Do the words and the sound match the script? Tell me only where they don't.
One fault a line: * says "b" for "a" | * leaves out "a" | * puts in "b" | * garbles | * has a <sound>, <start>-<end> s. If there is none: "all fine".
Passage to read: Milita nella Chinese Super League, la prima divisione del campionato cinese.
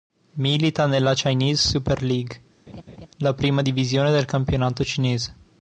* has a laugh, 2.7-3.1 s